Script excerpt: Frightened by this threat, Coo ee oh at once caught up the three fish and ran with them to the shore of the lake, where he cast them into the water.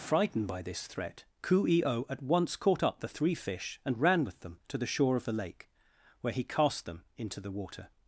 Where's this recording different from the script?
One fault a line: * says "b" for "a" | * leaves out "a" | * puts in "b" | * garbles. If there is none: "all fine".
all fine